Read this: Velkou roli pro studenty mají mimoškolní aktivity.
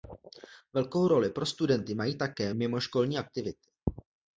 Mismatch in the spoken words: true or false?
true